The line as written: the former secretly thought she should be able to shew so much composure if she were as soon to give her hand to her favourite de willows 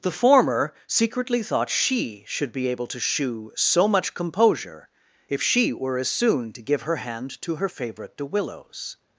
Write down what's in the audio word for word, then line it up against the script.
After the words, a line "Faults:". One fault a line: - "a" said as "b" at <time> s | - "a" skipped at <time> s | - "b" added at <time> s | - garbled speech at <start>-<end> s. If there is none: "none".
the former secretly thought she should be able to shew so much composure if she were as soon to give her hand to her favourite de willows
Faults:
none